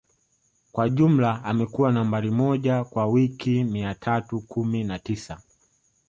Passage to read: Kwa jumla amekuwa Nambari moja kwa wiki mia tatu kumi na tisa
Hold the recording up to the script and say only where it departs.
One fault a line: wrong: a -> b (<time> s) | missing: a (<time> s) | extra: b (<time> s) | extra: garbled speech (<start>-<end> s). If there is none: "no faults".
no faults